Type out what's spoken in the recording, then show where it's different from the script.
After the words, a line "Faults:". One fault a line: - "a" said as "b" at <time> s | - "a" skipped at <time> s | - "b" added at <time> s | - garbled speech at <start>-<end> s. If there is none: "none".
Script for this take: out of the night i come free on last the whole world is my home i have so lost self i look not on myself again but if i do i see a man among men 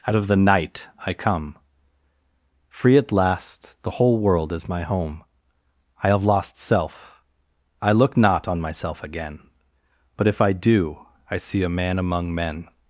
out of the night i come free at last the whole world is my home i have lost self i look not on myself again but if i do i see a man among men
Faults:
- "on" said as "at" at 3.0 s
- "so" skipped at 6.2 s